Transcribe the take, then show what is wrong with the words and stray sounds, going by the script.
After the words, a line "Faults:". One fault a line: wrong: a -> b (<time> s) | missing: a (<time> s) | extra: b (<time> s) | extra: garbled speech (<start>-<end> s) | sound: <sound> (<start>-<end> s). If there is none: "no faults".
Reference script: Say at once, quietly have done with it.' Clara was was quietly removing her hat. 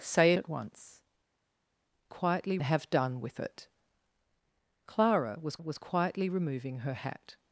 Say at once, quietly have done with it.' Clara was was quietly removing her hat.
Faults:
no faults